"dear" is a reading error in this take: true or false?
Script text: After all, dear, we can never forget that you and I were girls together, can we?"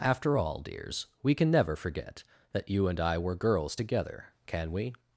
true